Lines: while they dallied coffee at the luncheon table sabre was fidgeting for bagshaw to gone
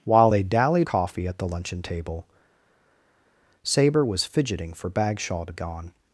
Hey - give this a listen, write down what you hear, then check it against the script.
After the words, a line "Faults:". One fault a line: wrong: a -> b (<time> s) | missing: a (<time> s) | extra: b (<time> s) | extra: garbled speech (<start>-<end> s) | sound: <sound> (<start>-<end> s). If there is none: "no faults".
while they dallied coffee at the luncheon table sabre was fidgeting for bagshaw to gone
Faults:
no faults